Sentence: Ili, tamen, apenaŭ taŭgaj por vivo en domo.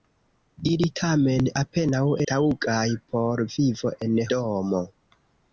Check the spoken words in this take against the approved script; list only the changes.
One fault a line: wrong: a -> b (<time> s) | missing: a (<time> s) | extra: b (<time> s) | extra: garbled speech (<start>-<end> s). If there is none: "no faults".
no faults